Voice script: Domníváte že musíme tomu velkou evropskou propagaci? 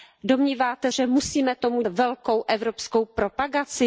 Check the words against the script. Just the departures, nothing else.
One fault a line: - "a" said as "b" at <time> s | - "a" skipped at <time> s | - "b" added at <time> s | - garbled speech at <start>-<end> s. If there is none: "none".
none